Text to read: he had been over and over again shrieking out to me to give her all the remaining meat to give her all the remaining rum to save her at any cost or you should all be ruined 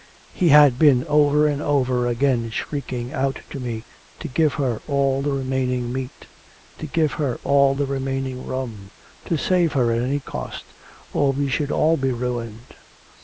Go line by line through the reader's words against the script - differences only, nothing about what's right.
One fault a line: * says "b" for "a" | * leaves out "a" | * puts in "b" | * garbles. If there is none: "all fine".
* says "we" for "you"